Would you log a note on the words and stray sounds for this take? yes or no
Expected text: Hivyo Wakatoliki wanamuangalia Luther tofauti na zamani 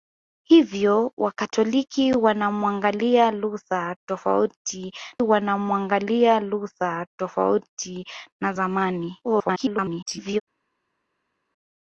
yes